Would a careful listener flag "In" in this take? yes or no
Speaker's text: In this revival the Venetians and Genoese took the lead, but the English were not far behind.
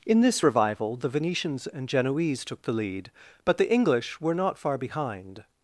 no